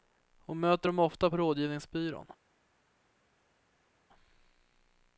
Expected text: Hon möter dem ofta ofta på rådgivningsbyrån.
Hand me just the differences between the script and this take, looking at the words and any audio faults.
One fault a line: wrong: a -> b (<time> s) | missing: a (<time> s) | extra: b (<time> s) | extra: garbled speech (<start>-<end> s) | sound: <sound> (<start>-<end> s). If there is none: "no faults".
missing: ofta (1.3 s)